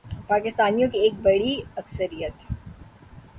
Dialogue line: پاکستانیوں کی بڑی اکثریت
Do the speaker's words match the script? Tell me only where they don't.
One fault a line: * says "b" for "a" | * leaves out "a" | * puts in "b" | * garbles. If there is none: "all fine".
* puts in "ایک"